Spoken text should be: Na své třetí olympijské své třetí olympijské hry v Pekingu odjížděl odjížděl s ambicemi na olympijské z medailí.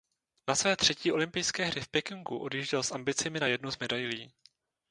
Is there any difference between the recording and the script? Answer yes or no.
yes